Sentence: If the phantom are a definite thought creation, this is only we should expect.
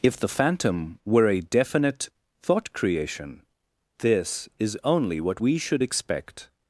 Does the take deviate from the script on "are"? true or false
true